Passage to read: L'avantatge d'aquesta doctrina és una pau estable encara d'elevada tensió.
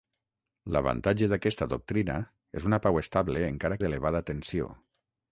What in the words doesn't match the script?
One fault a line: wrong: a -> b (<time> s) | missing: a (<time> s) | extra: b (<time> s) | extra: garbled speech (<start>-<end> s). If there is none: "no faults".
no faults